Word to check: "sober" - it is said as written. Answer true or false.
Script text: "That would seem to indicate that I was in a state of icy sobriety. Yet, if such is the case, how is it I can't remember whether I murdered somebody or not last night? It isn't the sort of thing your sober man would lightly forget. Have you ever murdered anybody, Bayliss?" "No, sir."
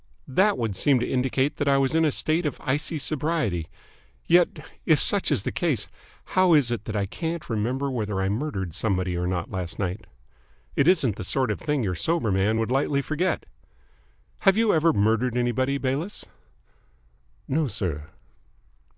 true